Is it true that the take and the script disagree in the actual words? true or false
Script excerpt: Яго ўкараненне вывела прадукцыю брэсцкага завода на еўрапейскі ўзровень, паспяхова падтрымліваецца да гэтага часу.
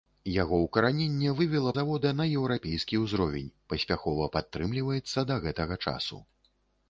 true